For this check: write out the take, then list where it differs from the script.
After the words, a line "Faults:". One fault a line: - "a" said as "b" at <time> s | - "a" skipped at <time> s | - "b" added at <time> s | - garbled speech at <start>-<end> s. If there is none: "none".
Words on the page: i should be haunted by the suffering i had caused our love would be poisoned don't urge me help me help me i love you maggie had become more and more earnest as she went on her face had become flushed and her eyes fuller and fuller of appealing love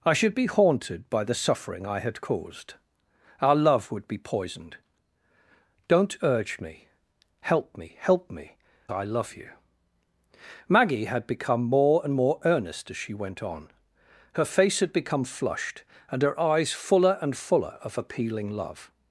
i should be haunted by the suffering i had caused our love would be poisoned don't urge me help me help me i love you maggie had become more and more earnest as she went on her face had become flushed and her eyes fuller and fuller of appealing love
Faults:
none